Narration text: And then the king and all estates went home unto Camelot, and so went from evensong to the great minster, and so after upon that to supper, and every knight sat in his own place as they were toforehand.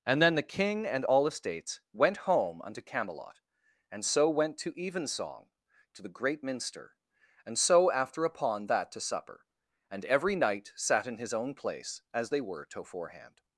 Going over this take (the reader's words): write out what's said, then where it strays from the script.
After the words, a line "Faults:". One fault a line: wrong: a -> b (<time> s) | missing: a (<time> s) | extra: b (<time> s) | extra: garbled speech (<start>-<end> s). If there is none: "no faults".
And then the king and all estates went home unto Camelot, and so went to evensong to the great minster, and so after upon that to supper, and every knight sat in his own place as they were toforehand.
Faults:
wrong: from -> to (4.6 s)